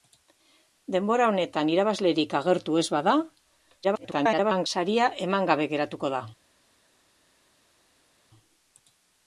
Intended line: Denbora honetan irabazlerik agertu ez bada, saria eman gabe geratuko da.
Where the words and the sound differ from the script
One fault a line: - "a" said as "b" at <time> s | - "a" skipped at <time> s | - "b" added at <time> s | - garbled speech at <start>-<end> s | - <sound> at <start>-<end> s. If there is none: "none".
- garbled speech at 3.8-4.7 s